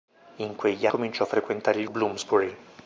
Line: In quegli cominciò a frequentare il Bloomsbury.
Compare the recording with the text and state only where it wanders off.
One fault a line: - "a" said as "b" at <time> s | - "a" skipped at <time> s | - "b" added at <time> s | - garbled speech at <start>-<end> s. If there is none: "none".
none